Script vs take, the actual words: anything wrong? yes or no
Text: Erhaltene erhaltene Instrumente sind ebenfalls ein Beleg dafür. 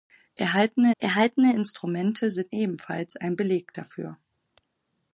no